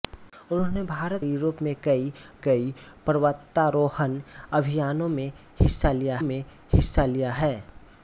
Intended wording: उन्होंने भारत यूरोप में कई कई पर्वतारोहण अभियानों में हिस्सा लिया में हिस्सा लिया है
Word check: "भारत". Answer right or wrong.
right